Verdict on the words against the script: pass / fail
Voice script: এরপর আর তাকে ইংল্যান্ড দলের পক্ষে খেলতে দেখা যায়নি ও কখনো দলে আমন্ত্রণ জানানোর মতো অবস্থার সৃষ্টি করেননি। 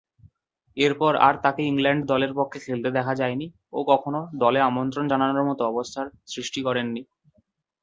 pass